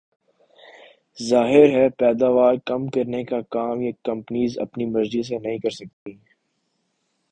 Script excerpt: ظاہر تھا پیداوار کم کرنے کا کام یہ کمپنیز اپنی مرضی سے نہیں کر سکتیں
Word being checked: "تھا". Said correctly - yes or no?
no